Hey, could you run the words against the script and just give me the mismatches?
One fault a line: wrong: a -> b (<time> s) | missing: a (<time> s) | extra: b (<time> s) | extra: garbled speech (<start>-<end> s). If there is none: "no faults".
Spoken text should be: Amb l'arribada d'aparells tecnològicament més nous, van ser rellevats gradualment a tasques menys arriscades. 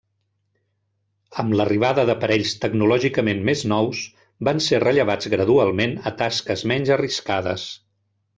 no faults